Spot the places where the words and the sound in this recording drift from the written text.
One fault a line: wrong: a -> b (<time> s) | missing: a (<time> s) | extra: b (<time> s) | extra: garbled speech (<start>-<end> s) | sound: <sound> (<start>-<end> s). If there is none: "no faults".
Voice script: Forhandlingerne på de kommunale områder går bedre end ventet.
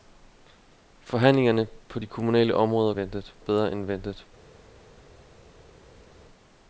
wrong: går -> ventet (2.9 s)